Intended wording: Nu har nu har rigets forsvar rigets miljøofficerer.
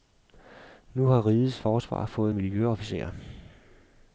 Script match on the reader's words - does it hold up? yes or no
no